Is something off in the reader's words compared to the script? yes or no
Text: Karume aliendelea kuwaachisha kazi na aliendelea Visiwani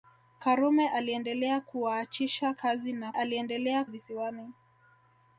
no